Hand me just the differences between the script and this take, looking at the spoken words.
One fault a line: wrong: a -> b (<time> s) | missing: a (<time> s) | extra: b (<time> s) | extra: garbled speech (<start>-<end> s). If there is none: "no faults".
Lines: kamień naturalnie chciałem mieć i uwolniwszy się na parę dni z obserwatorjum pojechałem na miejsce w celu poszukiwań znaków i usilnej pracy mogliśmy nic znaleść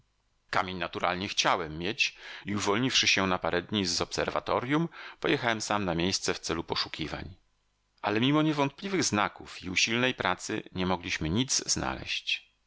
extra: sam (5.6 s)
extra: ale mimo niewątpliwych (8.0 s)
extra: nie (10.7 s)